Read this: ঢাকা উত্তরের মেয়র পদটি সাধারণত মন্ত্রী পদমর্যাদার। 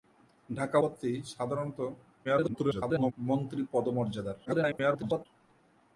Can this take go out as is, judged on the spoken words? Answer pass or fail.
fail